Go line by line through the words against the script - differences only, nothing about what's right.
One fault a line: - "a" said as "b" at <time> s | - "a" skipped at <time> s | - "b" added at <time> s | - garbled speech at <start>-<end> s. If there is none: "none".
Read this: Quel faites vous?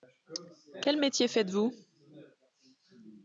- "métier" added at 1.0 s